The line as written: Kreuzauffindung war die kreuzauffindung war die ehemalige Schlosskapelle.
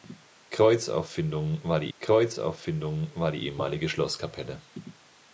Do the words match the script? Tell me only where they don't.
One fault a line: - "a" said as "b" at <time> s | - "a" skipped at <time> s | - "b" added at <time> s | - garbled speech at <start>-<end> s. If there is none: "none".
none